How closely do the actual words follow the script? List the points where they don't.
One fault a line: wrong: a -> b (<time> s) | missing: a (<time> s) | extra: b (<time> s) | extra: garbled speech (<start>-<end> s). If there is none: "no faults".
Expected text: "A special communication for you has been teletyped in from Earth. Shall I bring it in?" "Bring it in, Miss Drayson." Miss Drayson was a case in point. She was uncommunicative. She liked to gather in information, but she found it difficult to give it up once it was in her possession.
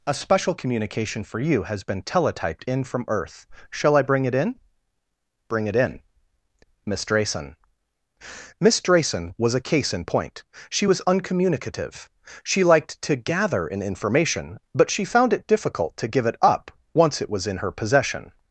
no faults